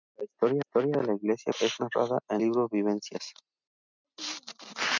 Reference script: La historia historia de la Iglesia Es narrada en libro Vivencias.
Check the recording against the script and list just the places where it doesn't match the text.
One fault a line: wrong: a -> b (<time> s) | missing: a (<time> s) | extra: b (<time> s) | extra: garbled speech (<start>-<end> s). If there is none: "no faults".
no faults